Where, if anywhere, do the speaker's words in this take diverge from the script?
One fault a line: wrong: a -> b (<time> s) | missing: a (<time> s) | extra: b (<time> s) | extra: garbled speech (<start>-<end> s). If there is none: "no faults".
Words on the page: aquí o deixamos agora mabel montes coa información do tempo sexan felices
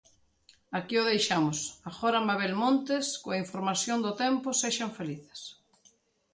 no faults